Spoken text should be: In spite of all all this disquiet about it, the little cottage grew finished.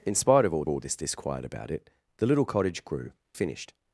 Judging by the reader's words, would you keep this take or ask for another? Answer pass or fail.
pass